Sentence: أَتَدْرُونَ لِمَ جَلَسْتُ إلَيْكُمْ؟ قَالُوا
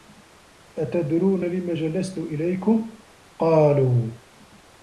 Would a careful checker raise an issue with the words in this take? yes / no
no